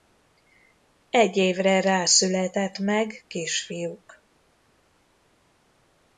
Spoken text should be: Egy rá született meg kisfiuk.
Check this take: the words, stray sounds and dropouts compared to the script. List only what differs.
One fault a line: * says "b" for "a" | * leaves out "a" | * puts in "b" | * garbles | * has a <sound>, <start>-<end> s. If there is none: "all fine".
* puts in "évre"